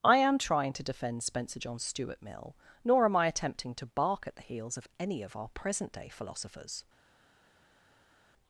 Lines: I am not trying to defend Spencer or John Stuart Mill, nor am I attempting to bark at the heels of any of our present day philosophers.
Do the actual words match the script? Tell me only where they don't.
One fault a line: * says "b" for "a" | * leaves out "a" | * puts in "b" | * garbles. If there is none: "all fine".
* leaves out "not"
* leaves out "or"